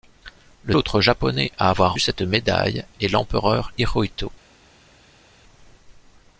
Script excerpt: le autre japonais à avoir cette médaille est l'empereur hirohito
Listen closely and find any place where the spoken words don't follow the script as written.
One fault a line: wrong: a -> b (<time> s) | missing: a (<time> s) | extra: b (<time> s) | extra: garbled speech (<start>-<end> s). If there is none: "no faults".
no faults